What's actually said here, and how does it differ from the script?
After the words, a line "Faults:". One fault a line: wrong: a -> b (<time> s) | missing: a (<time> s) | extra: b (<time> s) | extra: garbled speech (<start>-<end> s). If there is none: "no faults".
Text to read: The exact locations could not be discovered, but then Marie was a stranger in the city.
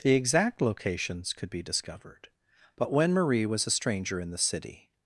The exact locations could be discovered, but when Marie was a stranger in the city.
Faults:
missing: not (1.5 s)
wrong: then -> when (2.9 s)